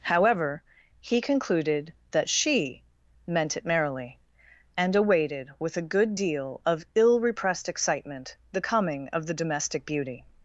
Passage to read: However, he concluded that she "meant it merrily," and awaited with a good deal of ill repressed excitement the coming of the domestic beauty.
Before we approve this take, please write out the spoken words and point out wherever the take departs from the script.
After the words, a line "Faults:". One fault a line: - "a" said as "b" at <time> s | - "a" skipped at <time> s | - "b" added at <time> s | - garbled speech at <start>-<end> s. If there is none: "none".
However, he concluded that she "meant it merrily," and awaited with a good deal of ill repressed excitement the coming of the domestic beauty.
Faults:
none